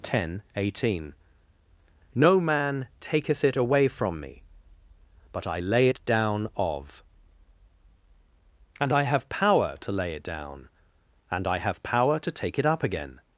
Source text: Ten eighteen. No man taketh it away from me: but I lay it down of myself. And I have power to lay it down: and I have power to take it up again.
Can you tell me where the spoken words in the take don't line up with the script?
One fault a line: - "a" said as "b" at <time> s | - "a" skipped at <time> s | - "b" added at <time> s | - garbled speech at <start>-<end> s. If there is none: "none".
- "myself" skipped at 7.0 s